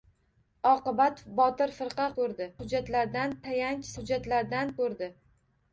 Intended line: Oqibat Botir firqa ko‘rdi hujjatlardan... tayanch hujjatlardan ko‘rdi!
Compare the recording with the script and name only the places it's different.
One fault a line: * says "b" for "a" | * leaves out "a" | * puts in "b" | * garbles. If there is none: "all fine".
all fine